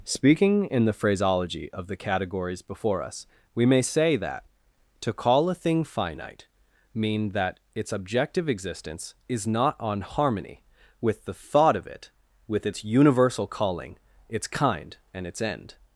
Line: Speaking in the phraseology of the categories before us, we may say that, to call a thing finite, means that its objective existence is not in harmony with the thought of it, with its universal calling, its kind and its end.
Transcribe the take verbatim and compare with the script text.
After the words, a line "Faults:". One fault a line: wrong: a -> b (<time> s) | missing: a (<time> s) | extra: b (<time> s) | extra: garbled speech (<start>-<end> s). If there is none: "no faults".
Speaking in the phraseology of the categories before us, we may say that, to call a thing finite, mean that its objective existence is not on harmony with the thought of it, with its universal calling, its kind and its end.
Faults:
wrong: means -> mean (6.9 s)
wrong: in -> on (9.8 s)